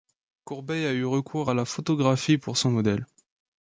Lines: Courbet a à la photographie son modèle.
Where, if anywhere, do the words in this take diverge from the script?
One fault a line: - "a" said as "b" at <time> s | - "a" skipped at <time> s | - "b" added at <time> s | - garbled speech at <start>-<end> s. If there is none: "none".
- "eu recours" added at 0.9 s
- "pour" added at 2.4 s